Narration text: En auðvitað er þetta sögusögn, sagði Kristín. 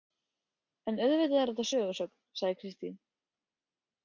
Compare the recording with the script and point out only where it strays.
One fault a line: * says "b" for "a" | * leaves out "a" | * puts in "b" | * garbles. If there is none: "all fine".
all fine